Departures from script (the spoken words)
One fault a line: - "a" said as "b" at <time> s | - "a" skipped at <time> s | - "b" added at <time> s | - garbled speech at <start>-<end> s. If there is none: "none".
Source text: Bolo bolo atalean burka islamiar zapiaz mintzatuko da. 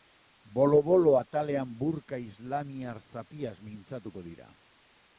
- "da" said as "dira" at 4.3 s